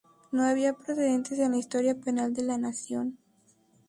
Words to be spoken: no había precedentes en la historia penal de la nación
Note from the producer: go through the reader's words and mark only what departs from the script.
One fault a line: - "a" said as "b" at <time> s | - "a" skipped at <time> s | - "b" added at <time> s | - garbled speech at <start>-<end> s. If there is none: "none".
none